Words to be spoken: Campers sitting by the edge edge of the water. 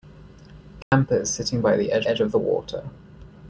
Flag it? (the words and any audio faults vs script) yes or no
yes